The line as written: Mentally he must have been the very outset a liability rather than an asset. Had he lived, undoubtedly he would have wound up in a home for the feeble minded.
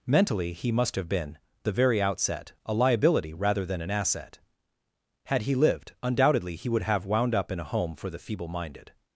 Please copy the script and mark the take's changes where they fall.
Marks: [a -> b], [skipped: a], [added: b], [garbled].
Mentally he must have been the very outset a liability rather than an asset. Had he lived, undoubtedly he would have wound up in a home for the feeble minded.